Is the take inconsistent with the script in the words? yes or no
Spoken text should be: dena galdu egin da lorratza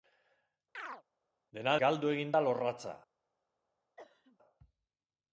no